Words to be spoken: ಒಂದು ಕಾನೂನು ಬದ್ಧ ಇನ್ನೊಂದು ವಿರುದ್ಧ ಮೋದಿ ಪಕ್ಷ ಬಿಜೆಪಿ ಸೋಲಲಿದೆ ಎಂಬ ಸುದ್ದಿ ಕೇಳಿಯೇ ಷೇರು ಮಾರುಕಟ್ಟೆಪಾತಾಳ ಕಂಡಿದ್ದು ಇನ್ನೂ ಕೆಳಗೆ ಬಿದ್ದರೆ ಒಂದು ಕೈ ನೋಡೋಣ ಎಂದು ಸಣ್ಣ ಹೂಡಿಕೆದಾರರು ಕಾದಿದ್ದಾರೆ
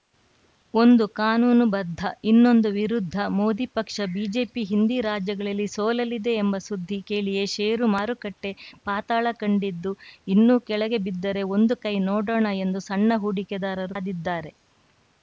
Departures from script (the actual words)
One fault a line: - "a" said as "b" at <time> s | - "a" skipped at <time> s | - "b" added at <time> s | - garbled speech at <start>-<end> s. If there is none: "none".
- "ಹಿಂದಿ ರಾಜ್ಯಗಳಲ್ಲಿ" added at 4.7 s